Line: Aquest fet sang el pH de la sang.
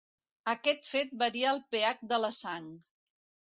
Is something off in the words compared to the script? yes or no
yes